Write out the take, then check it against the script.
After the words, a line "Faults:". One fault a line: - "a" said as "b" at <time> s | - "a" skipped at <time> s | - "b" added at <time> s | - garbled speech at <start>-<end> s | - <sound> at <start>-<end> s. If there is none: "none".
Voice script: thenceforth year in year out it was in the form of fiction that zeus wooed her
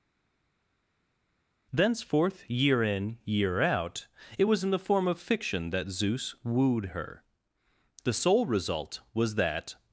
thenceforth year in year out it was in the form of fiction that zeus wooed her the sole result was that
Faults:
- "the sole result was that" added at 8.0 s